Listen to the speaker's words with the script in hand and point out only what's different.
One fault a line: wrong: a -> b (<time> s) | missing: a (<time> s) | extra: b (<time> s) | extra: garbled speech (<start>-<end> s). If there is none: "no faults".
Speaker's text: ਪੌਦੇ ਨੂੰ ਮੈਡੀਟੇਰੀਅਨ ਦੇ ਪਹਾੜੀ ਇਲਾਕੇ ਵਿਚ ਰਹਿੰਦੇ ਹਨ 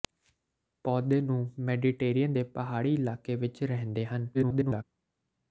extra: garbled speech (4.3-4.8 s)